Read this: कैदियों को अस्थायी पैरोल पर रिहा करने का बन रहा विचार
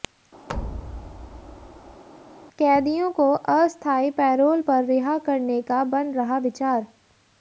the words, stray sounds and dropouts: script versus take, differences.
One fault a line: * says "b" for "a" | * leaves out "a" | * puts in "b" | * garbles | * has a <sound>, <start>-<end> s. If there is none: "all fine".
* has a thud, 0.5-2.0 s